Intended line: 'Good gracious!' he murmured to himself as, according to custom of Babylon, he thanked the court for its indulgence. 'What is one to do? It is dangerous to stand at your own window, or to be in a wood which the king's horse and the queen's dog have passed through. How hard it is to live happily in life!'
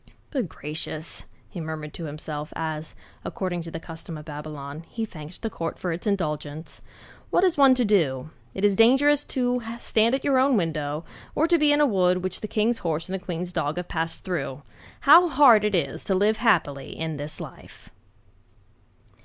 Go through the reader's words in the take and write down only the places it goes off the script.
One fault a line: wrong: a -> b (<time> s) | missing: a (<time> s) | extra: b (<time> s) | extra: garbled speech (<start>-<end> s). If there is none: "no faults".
extra: the (3.7 s)
extra: this (17.2 s)